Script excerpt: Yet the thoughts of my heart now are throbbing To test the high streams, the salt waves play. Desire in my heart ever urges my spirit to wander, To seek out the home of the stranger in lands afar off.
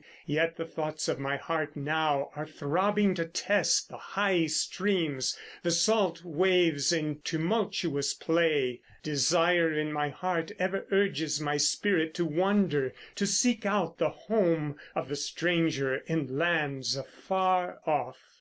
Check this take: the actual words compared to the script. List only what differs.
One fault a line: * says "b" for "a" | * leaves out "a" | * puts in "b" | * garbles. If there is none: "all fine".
* puts in "in tumultuous"